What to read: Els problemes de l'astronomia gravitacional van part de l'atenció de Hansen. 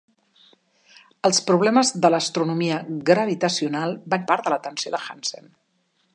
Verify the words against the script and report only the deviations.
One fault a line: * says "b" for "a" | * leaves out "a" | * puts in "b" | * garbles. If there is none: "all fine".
all fine